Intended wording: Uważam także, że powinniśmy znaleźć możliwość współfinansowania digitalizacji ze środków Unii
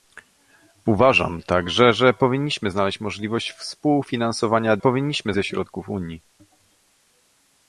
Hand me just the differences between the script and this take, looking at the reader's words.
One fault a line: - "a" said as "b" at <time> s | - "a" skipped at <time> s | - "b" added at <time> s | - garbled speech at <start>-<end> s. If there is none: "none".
- "digitalizacji" said as "powinniśmy" at 4.8 s